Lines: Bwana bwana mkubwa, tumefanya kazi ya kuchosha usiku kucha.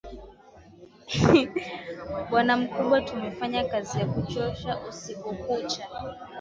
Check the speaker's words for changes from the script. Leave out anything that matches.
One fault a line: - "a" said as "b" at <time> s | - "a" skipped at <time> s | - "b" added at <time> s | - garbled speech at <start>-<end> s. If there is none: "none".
- "bwana" skipped at 2.6 s